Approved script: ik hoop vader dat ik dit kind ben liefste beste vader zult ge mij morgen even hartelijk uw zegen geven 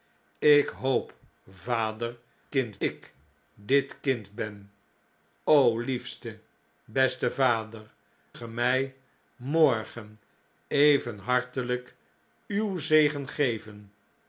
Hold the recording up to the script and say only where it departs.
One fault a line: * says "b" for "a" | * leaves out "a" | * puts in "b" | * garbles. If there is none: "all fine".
* says "kind" for "dat"
* leaves out "zult"